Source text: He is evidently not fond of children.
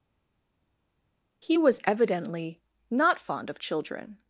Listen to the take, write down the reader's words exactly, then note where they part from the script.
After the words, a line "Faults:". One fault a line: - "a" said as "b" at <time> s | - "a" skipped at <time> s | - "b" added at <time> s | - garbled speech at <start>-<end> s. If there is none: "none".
He was evidently not fond of children.
Faults:
- "is" said as "was" at 1.6 s